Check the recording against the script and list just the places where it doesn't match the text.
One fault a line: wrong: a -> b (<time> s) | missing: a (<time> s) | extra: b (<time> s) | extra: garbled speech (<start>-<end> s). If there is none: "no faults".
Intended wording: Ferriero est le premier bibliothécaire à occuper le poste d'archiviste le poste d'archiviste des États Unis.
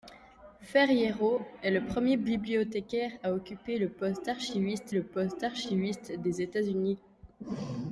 no faults